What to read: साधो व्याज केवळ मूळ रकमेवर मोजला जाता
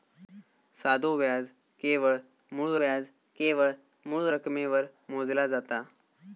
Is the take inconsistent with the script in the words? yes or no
yes